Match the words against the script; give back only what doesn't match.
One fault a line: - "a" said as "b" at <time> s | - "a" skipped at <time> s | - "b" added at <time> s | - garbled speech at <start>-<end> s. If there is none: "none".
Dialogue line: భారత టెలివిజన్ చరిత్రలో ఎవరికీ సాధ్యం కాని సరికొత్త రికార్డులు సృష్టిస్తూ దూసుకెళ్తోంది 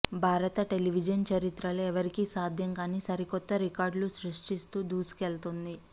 none